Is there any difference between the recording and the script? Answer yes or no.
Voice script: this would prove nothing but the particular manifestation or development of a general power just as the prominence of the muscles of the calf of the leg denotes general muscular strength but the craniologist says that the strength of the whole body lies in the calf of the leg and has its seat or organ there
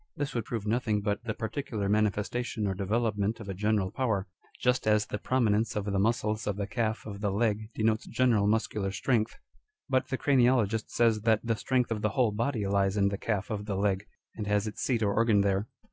no